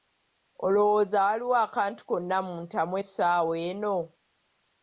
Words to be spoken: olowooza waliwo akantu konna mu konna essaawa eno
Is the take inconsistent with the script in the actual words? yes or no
yes